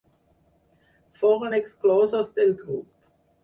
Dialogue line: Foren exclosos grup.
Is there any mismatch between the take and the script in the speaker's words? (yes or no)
yes